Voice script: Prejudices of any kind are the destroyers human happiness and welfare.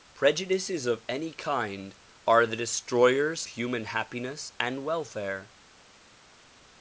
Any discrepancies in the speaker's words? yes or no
no